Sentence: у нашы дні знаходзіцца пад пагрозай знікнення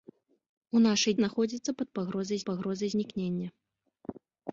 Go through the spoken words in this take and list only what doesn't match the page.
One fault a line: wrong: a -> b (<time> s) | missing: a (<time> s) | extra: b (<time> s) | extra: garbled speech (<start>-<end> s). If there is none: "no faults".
missing: дні (1.1 s)
extra: пагрозай (2.5 s)